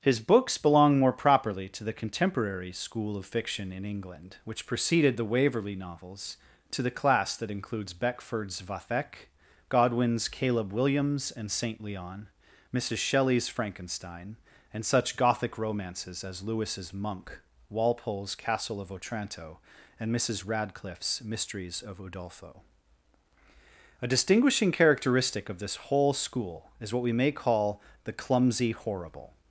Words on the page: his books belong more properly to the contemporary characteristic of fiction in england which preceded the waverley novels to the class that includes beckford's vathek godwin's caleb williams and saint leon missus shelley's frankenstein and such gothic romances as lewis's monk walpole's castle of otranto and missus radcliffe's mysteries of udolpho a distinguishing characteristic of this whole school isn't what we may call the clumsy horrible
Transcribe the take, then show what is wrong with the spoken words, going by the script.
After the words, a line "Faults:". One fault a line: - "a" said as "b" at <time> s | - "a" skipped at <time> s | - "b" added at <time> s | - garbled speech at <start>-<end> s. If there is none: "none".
his books belong more properly to the contemporary school of fiction in england which preceded the waverley novels to the class that includes beckford's vathek godwin's caleb williams and saint leon missus shelley's frankenstein and such gothic romances as lewis's monk walpole's castle of otranto and missus radcliffe's mysteries of udolpho a distinguishing characteristic of this whole school is what we may call the clumsy horrible
Faults:
- "characteristic" said as "school" at 2.7 s
- "isn't" said as "is" at 26.8 s